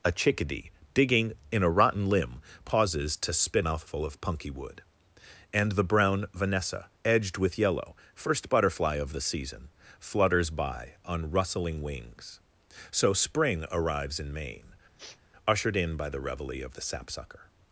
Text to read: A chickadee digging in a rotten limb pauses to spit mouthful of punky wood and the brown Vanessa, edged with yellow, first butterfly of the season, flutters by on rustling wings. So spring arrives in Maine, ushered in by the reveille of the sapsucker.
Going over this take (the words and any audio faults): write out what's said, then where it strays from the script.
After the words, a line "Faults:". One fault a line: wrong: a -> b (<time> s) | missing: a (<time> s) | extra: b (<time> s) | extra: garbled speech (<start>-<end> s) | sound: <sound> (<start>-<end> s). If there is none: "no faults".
A chickadee digging in a rotten limb pauses to spit mouthful of punky wood and the brown Vanessa, edged with yellow, first butterfly of the season, flutters by on rustling wings. So spring arrives in Maine, ushered in by the reveille of the sapsucker.
Faults:
sound: sniff (15.0-15.2 s)